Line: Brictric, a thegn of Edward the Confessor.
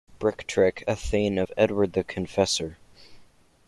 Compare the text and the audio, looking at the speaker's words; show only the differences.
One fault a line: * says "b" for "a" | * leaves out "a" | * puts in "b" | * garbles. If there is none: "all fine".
all fine